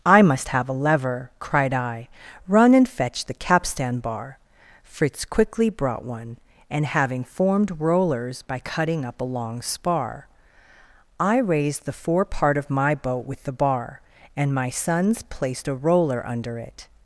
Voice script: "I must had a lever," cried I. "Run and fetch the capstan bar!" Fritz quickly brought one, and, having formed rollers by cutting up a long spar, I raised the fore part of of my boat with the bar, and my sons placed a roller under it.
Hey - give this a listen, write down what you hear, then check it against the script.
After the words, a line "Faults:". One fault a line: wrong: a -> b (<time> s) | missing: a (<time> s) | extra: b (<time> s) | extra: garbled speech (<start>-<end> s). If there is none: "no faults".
"I must have a lever," cried I. "Run and fetch the capstan bar!" Fritz quickly brought one, and, having formed rollers by cutting up a long spar, I raised the fore part of my boat with the bar, and my sons placed a roller under it.
Faults:
wrong: had -> have (0.5 s)
missing: of (12.7 s)